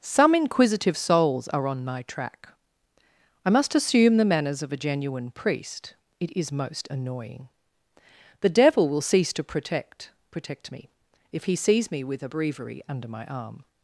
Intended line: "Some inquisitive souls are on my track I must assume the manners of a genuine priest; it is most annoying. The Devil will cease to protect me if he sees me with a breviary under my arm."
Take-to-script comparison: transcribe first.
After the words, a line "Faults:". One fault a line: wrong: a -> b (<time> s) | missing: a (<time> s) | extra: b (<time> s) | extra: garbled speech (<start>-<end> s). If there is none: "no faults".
"Some inquisitive souls are on my track I must assume the manners of a genuine priest; it is most annoying. The Devil will cease to protect protect me if he sees me with a breviary under my arm."
Faults:
extra: protect (10.3 s)